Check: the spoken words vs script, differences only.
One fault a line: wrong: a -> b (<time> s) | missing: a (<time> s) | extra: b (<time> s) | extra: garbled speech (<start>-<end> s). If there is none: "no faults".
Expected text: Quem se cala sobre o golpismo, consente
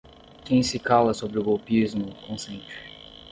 no faults